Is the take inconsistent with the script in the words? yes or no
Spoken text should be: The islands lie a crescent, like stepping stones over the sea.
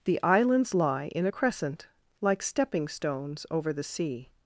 yes